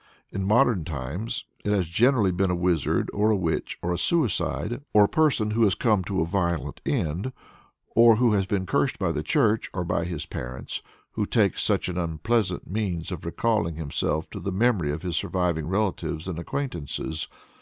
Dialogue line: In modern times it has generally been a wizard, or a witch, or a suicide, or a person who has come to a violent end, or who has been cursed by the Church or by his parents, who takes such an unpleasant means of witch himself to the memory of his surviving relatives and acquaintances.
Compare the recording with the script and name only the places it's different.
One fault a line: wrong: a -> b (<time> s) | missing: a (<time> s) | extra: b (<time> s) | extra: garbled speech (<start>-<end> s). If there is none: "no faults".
wrong: witch -> recalling (13.3 s)